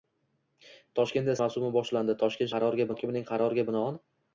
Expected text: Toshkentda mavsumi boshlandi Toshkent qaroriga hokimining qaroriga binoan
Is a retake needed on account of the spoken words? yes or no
no